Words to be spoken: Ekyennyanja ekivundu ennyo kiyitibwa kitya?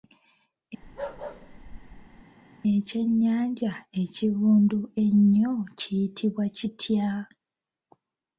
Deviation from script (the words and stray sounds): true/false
true